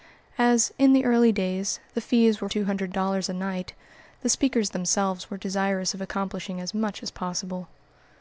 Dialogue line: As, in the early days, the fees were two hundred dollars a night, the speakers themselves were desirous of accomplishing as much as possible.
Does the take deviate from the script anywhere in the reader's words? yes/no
no